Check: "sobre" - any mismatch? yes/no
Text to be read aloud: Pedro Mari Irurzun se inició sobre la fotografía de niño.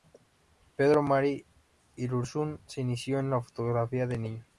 yes